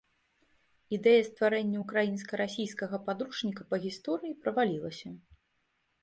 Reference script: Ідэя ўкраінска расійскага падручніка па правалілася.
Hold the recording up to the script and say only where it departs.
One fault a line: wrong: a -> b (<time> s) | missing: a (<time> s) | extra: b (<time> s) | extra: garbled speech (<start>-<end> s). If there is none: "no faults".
extra: стварэння (1.3 s)
extra: гісторыі (3.9 s)